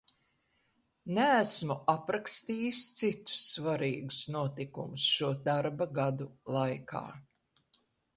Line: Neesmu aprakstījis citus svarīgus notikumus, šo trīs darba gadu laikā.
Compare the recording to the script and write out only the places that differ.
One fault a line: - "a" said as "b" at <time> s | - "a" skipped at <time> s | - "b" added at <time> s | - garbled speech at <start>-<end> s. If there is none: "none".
- "trīs" skipped at 5.3 s